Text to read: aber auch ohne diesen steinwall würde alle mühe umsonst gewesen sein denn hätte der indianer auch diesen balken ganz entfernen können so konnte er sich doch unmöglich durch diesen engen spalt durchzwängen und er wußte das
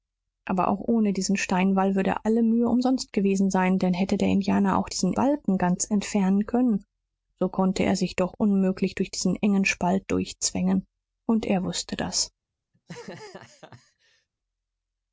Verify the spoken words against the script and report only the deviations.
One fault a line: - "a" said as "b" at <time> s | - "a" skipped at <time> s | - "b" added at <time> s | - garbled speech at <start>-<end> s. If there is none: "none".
none